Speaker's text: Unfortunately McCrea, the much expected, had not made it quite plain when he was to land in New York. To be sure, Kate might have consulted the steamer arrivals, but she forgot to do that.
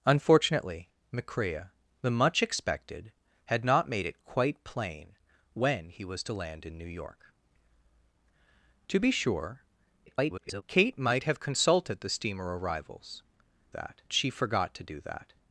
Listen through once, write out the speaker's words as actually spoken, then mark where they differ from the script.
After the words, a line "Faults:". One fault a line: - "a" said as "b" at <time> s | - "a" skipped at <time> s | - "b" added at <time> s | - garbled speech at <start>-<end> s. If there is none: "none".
Unfortunately McCrea, the much expected, had not made it quite plain when he was to land in New York. To be sure, [garbled] Kate might have consulted the steamer arrivals, that she forgot to do that.
Faults:
- garbled speech at 10.1-10.6 s
- "but" said as "that" at 13.7 s